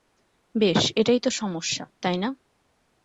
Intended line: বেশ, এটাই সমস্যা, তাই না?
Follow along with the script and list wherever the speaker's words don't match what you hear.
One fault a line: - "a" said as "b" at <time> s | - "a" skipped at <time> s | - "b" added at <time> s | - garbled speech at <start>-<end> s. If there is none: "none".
- "তো" added at 1.2 s